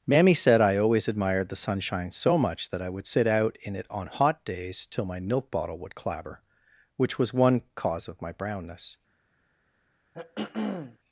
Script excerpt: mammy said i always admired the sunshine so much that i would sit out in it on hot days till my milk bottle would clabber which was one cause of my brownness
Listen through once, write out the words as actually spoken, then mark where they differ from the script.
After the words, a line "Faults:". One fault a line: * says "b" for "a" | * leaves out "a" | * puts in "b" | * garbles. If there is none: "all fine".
mammy said i always admired the sunshine so much that i would sit out in it on hot days till my milk bottle would clabber which was one cause of my brownness
Faults:
all fine